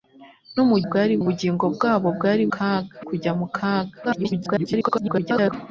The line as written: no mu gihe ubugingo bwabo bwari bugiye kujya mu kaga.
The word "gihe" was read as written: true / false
false